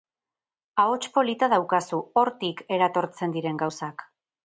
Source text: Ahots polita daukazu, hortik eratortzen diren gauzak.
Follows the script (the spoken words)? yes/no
yes